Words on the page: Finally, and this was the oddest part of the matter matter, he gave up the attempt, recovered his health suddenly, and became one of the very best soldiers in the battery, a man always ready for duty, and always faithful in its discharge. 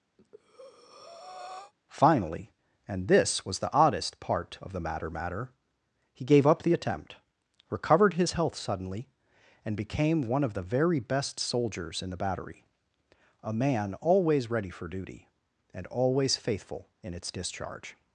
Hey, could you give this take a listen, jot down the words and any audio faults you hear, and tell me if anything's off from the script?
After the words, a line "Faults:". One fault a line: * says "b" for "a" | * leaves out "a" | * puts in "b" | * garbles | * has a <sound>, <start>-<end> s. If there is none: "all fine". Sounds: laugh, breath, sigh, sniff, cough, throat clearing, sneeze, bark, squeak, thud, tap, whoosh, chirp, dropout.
Finally, and this was the oddest part of the matter matter, he gave up the attempt, recovered his health suddenly, and became one of the very best soldiers in the battery, a man always ready for duty, and always faithful in its discharge.
Faults:
* has a breath, 0.2-1.7 s